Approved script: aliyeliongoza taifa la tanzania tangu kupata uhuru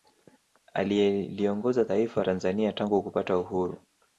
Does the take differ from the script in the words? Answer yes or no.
yes